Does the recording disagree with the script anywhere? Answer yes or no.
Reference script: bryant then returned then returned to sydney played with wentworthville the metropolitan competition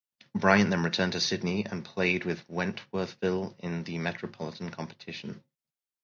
yes